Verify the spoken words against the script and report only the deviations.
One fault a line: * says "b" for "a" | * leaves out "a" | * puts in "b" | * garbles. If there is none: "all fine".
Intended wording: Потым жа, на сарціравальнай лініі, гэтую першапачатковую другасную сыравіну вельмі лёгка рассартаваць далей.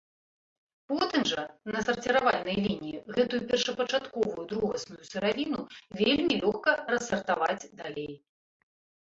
all fine